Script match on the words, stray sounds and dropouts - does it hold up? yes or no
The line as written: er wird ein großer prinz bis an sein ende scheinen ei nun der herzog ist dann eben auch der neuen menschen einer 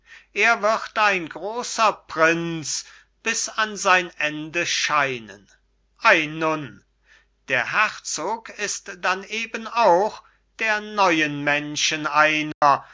no